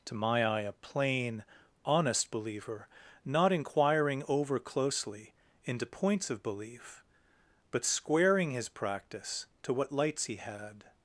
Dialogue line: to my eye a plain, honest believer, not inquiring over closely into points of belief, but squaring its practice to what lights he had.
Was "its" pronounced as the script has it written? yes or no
no